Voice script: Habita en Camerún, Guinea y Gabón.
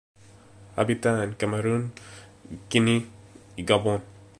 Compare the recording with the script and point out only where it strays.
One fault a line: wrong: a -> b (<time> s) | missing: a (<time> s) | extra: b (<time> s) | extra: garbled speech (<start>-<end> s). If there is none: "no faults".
no faults